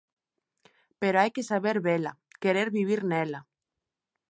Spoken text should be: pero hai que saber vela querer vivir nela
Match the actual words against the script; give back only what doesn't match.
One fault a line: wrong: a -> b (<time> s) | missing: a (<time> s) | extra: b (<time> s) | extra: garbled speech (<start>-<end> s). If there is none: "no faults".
no faults